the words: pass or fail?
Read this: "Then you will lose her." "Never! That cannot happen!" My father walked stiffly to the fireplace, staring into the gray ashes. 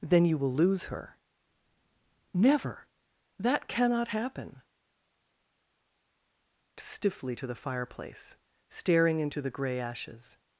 fail